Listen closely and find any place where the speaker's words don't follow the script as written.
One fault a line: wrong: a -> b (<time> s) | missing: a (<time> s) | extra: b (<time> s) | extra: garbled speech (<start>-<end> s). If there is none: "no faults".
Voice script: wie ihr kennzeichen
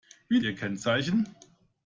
no faults